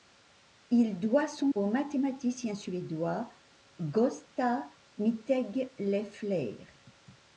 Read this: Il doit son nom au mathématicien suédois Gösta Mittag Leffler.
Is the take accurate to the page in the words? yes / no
no